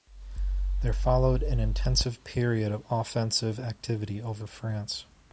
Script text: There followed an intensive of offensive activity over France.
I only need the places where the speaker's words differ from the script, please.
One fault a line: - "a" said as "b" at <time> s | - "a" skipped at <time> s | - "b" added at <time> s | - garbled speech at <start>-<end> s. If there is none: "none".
- "period" added at 2.2 s